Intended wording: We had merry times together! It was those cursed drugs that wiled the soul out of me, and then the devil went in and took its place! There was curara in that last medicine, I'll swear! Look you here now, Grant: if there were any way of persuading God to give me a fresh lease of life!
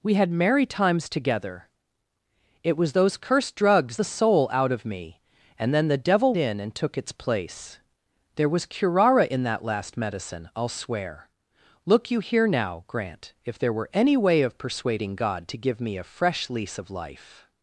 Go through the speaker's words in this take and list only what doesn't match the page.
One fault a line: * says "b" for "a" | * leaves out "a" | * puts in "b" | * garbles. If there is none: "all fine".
* leaves out "that wiled"
* leaves out "went"